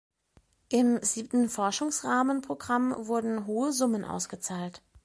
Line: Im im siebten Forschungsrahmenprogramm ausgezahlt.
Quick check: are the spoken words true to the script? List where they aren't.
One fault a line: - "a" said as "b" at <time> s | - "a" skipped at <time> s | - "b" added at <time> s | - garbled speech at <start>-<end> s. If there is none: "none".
- "im" skipped at 1.0 s
- "wurden hohe Summen" added at 3.1 s